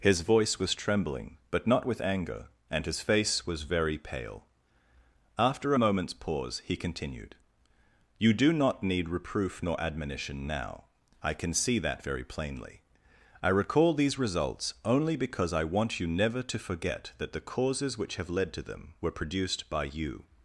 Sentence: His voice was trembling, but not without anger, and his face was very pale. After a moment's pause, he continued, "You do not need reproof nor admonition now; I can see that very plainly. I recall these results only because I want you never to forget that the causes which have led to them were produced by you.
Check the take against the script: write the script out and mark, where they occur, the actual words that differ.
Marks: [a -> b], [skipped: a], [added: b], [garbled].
His voice was trembling, but not [without -> with] anger, and his face was very pale. After a moment's pause, he continued, "You do not need reproof nor admonition now; I can see that very plainly. I recall these results only because I want you never to forget that the causes which have led to them were produced by you.